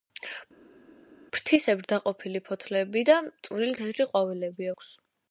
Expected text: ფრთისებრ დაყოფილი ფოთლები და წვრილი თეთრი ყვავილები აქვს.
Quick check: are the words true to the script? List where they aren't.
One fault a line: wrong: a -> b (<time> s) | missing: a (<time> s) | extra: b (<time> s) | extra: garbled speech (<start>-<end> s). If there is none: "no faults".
no faults